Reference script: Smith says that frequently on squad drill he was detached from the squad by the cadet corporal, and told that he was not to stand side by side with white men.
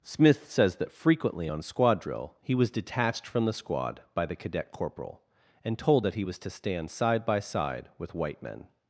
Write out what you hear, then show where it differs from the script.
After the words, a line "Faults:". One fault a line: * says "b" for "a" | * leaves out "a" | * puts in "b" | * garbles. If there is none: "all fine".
Smith says that frequently on squad drill he was detached from the squad by the cadet corporal, and told that he was to stand side by side with white men.
Faults:
* leaves out "not"